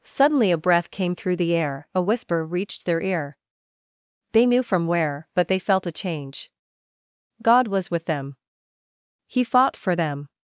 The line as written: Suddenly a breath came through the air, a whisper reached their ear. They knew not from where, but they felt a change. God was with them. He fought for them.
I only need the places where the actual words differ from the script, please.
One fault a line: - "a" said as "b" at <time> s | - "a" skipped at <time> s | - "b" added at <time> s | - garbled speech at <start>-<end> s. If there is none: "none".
- "not" skipped at 4.6 s